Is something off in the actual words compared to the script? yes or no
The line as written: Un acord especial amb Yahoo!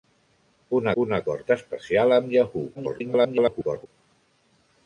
yes